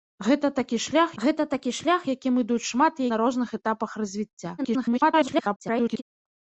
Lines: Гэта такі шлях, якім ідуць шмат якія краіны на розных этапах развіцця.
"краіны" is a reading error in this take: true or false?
true